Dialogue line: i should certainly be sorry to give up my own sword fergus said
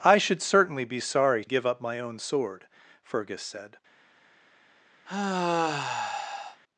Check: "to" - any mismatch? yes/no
yes